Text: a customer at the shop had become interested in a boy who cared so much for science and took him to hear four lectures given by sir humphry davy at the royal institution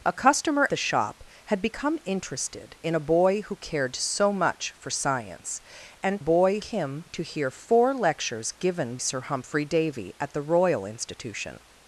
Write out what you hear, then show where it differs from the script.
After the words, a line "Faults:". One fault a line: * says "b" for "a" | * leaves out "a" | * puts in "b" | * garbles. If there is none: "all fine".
a customer the shop had become interested in a boy who cared so much for science and boy him to hear four lectures given sir humphry davy at the royal institution
Faults:
* leaves out "at"
* says "boy" for "took"
* leaves out "by"